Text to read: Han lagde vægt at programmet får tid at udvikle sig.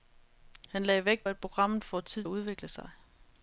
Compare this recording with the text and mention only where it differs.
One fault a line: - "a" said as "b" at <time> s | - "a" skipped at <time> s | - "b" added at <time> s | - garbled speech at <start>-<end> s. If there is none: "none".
none